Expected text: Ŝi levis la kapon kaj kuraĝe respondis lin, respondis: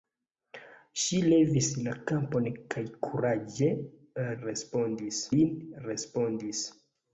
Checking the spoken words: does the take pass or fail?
pass